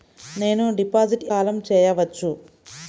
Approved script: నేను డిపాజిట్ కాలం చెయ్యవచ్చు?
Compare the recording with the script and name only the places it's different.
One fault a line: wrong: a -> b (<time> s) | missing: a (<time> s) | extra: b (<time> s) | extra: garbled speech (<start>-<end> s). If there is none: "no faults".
no faults